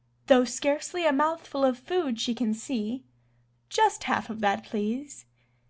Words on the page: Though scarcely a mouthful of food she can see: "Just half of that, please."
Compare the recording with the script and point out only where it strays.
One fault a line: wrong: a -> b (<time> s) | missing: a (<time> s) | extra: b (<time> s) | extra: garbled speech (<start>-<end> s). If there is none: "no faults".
no faults